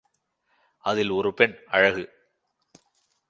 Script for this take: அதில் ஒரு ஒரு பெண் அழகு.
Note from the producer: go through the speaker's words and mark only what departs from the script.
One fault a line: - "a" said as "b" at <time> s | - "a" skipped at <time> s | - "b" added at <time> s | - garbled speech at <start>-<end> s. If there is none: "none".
- "ஒரு" skipped at 1.4 s